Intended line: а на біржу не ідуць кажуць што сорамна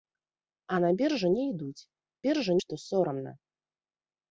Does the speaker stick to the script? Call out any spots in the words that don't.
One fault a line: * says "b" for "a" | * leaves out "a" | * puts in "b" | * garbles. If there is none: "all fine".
* says "біржу" for "кажуць"